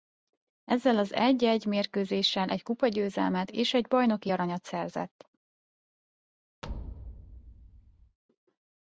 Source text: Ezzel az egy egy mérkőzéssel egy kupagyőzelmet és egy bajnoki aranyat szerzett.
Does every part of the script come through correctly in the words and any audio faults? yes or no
no